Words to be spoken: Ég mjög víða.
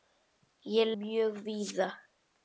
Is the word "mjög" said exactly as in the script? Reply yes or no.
yes